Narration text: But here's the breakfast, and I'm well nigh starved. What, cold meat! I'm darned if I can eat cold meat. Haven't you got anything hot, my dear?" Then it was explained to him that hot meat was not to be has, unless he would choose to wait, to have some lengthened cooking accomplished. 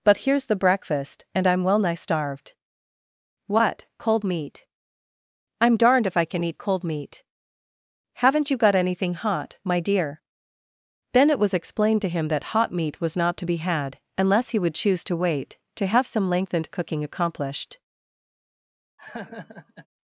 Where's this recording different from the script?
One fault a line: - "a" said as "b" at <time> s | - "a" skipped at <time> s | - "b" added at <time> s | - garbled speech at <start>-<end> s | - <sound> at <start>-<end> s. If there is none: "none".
- "has" said as "had" at 13.6 s
- laugh at 19.0-19.9 s